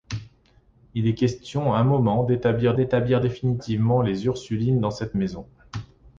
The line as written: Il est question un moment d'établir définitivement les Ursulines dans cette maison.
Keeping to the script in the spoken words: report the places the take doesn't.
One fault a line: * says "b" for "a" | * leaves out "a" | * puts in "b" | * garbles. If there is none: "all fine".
* puts in "d'établir"